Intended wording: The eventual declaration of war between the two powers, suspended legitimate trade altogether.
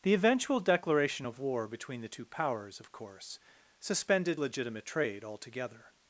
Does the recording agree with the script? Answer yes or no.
no